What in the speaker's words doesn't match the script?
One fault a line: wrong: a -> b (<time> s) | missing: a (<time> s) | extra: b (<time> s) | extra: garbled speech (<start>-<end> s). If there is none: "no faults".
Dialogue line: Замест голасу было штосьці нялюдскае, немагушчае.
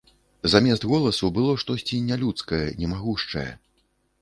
no faults